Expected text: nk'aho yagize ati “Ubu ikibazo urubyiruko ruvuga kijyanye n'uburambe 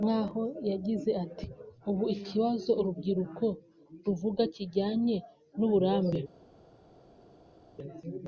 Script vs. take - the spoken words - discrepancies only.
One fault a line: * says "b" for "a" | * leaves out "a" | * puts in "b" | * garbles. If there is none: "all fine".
all fine